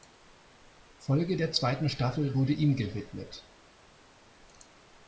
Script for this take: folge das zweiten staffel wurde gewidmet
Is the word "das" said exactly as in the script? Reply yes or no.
no